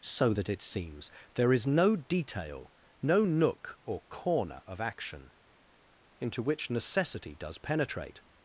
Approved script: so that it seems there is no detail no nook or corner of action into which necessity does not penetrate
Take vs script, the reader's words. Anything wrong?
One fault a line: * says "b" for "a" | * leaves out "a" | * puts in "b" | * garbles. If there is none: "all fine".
* leaves out "not"